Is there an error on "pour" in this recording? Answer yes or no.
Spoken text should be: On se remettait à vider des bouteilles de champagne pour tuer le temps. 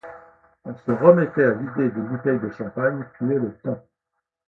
yes